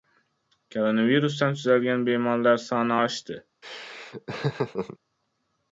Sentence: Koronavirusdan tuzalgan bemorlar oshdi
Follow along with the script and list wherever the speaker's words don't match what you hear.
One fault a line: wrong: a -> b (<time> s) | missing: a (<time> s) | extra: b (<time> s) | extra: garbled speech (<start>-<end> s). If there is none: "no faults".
extra: soni (2.6 s)